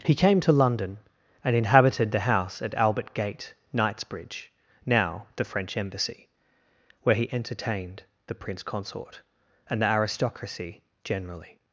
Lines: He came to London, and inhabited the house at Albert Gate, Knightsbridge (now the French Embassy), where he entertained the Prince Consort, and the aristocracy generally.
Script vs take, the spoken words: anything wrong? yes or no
no